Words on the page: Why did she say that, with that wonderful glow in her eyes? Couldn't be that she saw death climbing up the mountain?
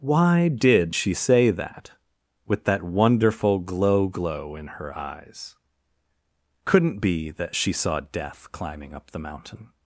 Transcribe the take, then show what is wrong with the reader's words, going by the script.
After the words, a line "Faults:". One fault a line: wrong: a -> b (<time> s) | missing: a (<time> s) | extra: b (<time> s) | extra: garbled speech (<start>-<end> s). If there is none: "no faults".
Why did she say that, with that wonderful glow glow in her eyes? Couldn't be that she saw death climbing up the mountain?
Faults:
extra: glow (4.1 s)